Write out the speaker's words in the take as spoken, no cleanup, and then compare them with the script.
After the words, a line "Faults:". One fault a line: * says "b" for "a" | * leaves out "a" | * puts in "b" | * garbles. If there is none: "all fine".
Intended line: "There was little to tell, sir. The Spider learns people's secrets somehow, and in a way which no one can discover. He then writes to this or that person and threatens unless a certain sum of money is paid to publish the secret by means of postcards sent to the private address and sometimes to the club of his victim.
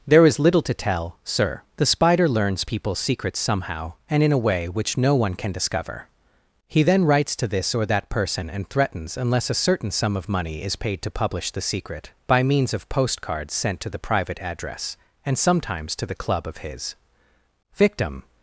"There is little to tell, sir. The Spider learns people's secrets somehow, and in a way which no one can discover. He then writes to this or that person and threatens unless a certain sum of money is paid to publish the secret by means of postcards sent to the private address and sometimes to the club of his victim.
Faults:
* says "is" for "was"